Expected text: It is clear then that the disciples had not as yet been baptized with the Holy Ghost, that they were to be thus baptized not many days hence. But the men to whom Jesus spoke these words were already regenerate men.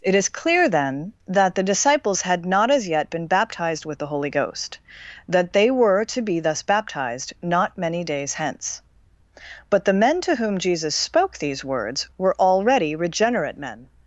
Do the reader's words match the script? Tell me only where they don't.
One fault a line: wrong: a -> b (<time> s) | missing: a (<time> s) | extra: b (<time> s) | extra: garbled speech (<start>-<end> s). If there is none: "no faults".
no faults